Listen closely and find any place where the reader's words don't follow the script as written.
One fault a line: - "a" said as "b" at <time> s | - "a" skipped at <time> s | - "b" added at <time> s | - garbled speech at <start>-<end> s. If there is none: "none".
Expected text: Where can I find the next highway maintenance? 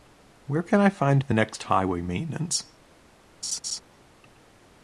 none